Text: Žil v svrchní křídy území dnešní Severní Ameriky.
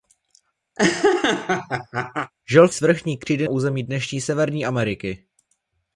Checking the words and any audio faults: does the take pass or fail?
fail